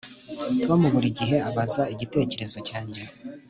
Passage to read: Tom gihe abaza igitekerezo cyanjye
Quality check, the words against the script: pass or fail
fail